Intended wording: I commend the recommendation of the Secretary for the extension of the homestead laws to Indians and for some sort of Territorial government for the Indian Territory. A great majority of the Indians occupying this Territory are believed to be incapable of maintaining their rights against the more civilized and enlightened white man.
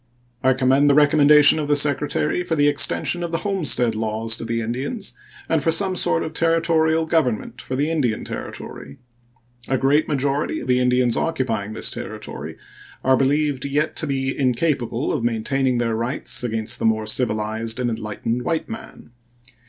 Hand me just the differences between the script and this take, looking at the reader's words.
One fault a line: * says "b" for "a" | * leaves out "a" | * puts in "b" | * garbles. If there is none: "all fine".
* puts in "the"
* puts in "yet"